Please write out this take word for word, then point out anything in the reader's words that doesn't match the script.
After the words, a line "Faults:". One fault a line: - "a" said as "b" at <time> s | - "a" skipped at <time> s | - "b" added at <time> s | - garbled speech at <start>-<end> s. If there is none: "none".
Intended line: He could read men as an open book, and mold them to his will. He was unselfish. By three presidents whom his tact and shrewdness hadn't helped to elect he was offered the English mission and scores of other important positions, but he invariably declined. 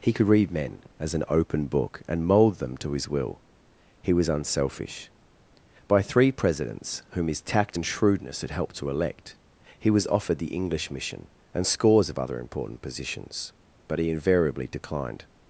He could read men as an open book, and mold them to his will. He was unselfish. By three presidents whom his tact and shrewdness had helped to elect he was offered the English mission and scores of other important positions, but he invariably declined.
Faults:
- "hadn't" said as "had" at 8.4 s